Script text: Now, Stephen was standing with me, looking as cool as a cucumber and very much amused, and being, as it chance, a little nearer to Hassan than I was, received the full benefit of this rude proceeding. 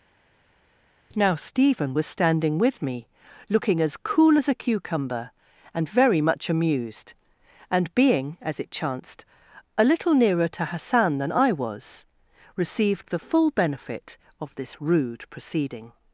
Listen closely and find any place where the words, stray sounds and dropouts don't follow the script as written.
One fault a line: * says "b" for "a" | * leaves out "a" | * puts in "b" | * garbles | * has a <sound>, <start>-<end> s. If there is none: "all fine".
* says "chanced" for "chance"